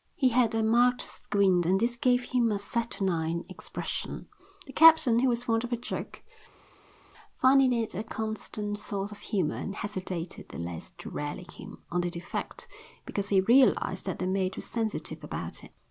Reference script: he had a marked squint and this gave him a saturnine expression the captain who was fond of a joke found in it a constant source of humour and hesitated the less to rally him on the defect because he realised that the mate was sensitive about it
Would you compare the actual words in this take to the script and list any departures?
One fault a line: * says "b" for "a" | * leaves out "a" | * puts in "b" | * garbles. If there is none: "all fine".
all fine